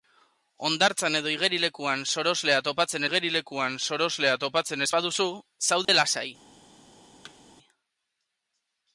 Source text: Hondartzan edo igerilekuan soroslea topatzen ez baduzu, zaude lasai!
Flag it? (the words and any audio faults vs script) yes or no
yes